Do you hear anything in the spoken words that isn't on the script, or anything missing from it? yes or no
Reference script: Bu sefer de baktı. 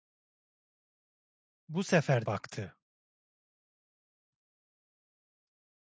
yes